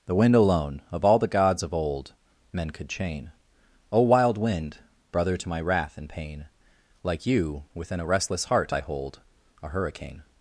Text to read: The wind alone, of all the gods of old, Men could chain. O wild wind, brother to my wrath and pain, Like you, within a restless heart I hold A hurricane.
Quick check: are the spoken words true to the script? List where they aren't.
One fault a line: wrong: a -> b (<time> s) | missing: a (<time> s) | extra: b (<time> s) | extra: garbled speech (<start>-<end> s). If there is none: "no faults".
no faults